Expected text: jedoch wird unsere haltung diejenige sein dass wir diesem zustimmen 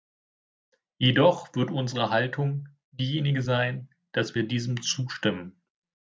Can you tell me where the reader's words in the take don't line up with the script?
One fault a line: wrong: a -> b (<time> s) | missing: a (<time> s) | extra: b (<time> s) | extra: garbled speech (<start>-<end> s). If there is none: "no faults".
no faults